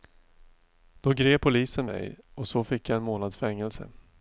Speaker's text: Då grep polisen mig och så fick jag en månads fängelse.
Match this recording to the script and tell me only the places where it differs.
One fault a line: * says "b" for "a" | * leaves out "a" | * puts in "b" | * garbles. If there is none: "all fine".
all fine